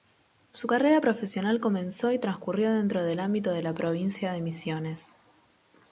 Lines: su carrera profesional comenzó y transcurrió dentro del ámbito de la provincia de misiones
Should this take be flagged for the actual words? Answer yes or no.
no